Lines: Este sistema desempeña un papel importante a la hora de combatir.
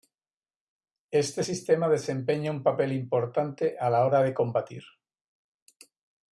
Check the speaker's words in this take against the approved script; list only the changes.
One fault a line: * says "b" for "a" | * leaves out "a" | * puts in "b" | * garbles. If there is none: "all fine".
all fine